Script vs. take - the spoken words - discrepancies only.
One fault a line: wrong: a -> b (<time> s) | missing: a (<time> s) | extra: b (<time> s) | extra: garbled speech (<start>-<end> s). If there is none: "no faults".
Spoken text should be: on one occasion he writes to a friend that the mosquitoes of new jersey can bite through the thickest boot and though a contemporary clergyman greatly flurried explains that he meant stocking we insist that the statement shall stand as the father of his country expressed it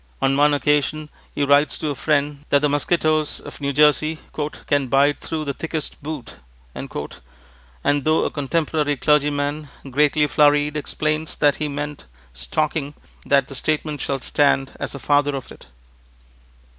missing: we insist (12.9 s)
missing: his country expressed (15.5 s)